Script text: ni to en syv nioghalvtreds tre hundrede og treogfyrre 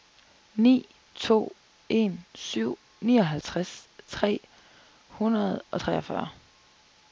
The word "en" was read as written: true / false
true